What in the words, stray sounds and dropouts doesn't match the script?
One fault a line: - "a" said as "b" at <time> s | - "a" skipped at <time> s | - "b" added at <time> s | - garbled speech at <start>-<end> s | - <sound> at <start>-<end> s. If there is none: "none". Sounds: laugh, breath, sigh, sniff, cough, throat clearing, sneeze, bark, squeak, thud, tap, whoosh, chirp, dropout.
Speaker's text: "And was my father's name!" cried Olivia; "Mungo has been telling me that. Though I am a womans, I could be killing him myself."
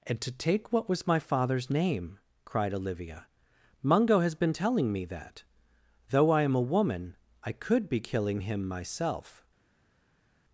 - "to take what" added at 0.2 s
- "womans" said as "woman" at 6.6 s